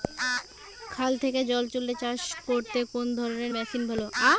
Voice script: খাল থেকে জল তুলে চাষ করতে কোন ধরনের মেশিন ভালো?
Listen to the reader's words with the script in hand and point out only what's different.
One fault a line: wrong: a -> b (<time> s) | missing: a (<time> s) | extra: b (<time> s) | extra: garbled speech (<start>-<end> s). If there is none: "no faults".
no faults